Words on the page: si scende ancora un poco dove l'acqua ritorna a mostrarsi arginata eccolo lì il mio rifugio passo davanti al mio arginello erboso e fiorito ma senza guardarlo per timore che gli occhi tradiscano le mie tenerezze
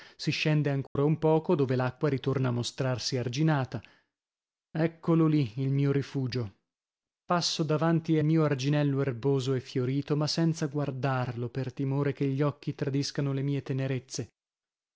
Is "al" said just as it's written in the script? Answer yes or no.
no